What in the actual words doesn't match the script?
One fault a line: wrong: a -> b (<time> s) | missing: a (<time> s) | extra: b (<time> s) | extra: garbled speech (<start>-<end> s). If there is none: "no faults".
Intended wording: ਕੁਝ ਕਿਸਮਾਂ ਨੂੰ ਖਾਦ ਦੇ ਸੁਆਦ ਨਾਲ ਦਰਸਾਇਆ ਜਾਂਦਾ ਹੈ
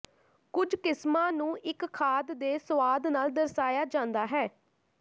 extra: ਇੱਕ (1.6 s)